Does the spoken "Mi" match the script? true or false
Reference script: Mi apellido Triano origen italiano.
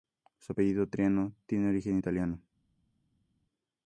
false